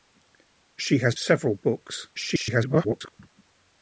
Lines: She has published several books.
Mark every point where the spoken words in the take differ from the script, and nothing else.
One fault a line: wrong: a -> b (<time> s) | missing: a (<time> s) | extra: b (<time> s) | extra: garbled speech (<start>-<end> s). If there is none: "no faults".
missing: published (1.1 s)
extra: garbled speech (2.1-3.2 s)